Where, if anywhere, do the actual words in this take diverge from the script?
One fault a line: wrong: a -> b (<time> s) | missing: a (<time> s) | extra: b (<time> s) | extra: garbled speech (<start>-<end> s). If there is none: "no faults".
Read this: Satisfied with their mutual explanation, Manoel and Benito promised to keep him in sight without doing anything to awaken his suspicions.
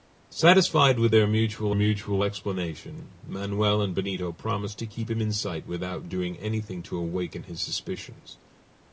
extra: mutual (1.7 s)